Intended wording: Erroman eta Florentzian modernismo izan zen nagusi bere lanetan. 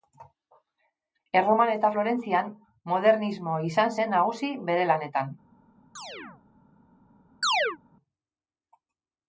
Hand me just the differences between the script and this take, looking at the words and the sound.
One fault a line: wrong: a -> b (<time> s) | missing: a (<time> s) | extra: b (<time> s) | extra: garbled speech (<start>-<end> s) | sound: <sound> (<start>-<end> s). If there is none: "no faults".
sound: chirp (6.0-6.4 s)
sound: chirp (7.4-7.8 s)